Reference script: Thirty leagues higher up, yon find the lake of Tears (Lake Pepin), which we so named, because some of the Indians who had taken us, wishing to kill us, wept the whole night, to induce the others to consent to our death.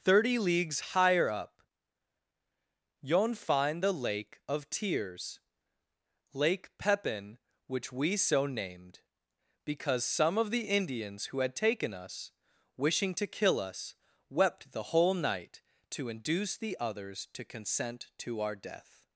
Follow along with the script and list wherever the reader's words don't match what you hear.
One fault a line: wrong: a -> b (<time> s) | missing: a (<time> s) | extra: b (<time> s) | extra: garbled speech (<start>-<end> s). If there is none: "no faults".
no faults